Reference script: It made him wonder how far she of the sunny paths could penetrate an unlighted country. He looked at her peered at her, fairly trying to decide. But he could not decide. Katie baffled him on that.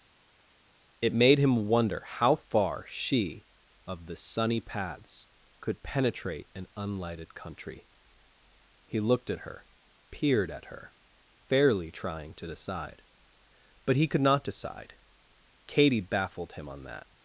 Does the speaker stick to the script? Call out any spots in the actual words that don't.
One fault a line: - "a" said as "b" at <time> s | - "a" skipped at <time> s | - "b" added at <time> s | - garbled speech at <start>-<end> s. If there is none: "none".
none